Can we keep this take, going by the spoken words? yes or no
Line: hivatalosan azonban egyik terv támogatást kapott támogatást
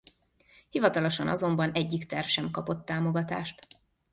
no